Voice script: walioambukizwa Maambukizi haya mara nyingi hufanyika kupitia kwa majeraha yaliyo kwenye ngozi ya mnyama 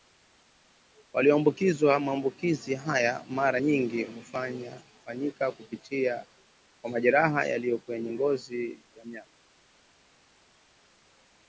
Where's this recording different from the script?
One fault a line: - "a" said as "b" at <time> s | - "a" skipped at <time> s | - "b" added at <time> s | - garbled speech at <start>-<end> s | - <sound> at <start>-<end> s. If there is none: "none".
none